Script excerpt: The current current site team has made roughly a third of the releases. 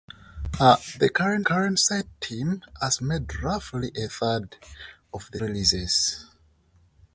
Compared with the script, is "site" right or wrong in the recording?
right